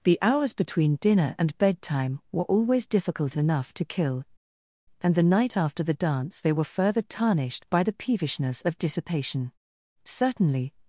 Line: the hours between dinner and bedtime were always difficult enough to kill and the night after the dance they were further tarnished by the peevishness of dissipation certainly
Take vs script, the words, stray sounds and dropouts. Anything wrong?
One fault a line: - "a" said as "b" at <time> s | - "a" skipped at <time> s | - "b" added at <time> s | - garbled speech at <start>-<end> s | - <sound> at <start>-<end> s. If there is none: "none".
none